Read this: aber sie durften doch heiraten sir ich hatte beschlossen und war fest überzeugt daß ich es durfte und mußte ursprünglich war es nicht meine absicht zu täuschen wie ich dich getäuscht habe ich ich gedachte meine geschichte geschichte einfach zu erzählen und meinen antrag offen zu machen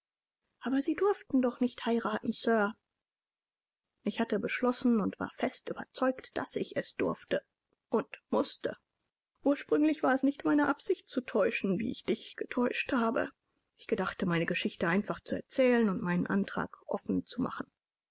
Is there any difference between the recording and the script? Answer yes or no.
yes